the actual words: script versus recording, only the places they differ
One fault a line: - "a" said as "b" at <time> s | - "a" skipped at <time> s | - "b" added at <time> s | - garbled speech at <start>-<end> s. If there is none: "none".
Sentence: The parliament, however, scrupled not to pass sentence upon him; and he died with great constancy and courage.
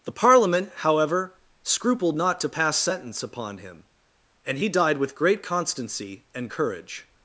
none